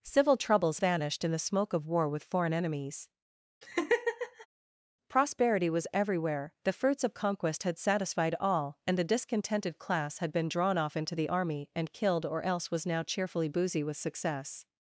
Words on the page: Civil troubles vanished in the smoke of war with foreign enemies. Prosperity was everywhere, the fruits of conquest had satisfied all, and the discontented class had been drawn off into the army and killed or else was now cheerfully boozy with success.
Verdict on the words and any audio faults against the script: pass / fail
fail